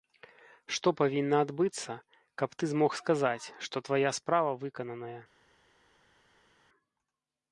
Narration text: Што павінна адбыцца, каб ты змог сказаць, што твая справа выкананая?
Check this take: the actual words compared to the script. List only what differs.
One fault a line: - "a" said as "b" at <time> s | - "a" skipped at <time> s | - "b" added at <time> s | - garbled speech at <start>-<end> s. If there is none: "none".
none